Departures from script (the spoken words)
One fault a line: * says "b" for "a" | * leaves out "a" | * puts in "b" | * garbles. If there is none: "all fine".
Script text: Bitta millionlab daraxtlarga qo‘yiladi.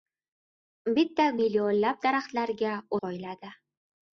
all fine